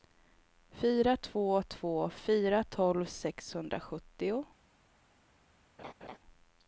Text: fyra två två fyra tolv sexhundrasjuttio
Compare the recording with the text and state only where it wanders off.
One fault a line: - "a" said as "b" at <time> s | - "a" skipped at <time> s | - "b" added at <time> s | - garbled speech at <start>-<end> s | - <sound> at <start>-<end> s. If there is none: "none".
- laugh at 5.8-6.2 s